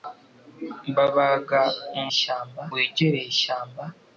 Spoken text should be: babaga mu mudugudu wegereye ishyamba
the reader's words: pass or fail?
fail